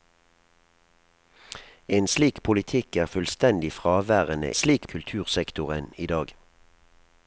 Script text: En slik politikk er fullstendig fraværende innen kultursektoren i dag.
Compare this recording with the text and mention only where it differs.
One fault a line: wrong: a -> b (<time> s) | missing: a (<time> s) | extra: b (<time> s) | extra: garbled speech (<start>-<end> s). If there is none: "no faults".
wrong: innen -> slik (4.5 s)